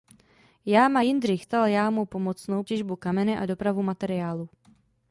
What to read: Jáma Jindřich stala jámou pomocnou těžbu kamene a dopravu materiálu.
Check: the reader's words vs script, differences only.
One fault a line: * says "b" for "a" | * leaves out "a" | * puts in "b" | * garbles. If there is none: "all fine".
all fine